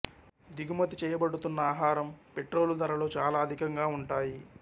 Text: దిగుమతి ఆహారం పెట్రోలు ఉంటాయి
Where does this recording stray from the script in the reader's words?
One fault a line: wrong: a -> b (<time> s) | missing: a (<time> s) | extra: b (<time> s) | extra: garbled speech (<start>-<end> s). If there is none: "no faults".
extra: చేయబడుతున్న (1.0 s)
extra: ధరలు చాలా అధికంగా (2.8 s)